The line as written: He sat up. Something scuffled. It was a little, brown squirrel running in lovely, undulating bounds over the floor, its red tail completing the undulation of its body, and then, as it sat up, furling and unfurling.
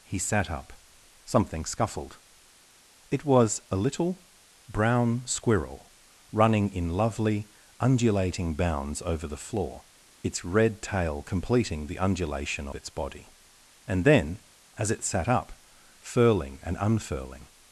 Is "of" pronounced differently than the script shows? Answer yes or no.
yes